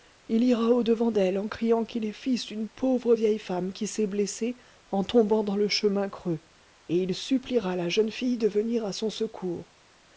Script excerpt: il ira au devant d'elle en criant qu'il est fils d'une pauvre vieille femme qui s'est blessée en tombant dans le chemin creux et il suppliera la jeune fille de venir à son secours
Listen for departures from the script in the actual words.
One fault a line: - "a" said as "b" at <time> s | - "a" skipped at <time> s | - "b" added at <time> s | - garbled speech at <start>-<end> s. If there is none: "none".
none